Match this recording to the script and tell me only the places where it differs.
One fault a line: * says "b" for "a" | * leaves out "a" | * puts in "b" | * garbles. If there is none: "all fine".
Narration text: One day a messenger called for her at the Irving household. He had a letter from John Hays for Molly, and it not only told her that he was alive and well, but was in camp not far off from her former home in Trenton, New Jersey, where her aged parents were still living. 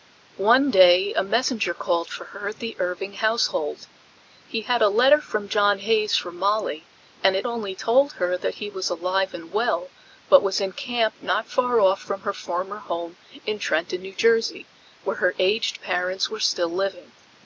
* leaves out "not"